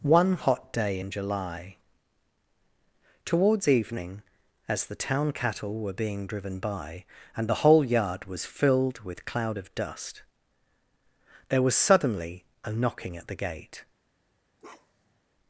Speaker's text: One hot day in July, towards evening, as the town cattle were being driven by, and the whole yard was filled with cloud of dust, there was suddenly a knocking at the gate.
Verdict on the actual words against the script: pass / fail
pass